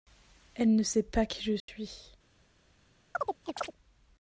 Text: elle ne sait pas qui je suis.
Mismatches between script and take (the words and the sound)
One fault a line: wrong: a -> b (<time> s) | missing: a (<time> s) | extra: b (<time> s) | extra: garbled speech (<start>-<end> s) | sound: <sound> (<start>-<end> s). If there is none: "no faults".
sound: dropout (1.6-1.7 s)
sound: chirp (3.1-3.7 s)